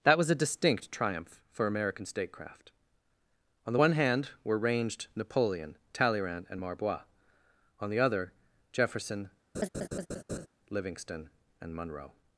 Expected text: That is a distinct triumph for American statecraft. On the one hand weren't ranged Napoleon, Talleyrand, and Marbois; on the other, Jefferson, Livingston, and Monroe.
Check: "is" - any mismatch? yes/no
yes